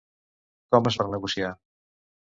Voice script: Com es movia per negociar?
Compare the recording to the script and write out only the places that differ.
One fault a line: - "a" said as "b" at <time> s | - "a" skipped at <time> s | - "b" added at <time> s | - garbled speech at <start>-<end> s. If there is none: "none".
- "movia" skipped at 1.0 s